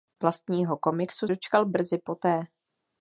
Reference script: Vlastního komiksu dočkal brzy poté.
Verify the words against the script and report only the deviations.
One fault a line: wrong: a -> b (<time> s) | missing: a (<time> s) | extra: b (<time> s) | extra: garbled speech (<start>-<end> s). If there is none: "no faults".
no faults